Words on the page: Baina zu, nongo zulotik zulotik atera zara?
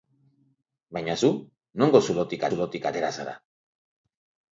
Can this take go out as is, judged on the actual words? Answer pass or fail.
pass